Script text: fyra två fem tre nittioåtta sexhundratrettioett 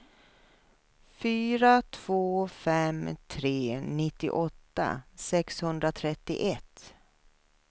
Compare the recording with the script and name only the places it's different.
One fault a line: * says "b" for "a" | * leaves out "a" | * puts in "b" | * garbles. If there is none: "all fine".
all fine